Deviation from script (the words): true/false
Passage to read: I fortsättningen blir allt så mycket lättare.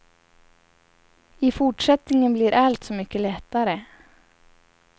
false